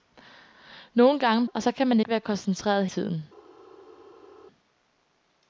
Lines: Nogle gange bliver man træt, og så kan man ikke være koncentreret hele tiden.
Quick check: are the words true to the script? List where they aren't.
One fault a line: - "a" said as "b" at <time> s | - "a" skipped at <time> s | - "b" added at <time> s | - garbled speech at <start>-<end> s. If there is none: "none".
- "bliver man træt" skipped at 1.4 s
- "ikke" skipped at 2.0 s
- "hele" skipped at 2.9 s